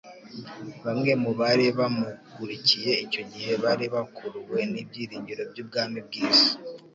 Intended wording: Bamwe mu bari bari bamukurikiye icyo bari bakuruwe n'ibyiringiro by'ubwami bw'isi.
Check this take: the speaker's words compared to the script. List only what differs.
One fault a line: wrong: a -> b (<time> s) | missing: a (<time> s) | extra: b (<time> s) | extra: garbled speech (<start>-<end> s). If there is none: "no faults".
missing: bari (1.6 s)
extra: gihe (3.3 s)